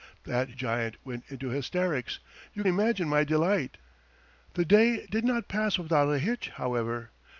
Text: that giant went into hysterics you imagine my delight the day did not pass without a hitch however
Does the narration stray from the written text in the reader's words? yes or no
no